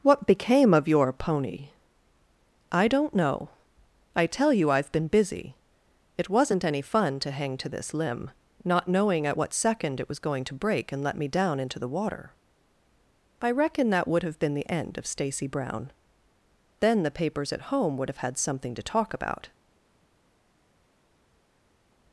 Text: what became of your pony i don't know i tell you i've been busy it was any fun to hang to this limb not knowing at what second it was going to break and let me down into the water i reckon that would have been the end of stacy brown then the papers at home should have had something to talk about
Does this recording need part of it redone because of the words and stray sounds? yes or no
yes